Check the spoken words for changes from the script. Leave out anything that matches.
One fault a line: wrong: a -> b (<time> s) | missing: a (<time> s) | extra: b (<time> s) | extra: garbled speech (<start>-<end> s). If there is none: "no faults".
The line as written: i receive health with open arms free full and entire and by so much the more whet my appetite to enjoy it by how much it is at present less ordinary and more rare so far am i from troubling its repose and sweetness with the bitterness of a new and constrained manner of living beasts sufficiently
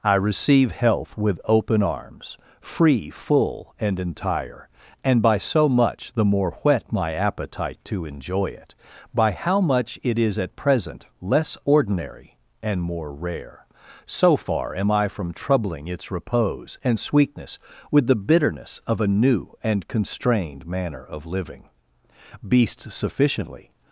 no faults